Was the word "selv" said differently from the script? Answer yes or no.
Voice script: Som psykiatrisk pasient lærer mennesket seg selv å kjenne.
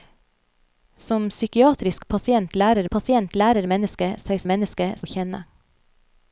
yes